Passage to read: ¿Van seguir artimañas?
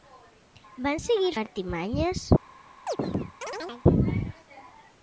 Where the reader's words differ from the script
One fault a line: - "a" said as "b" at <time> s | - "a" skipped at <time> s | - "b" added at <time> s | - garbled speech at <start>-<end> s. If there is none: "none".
none